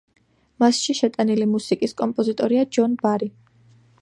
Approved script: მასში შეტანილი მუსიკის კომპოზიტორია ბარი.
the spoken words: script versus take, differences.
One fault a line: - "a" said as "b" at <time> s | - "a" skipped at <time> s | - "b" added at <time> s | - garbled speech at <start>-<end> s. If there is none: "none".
- "ჯონ" added at 2.8 s